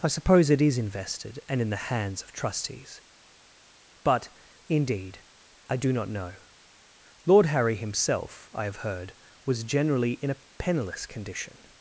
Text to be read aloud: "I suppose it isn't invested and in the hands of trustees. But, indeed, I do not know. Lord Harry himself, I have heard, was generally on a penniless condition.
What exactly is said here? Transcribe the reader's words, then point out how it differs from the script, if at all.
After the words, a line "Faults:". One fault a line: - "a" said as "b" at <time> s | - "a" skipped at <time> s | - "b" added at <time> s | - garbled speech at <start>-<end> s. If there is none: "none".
"I suppose it is invested and in the hands of trustees. But, indeed, I do not know. Lord Harry himself, I have heard, was generally in a penniless condition.
Faults:
- "isn't" said as "is" at 0.6 s
- "on" said as "in" at 10.1 s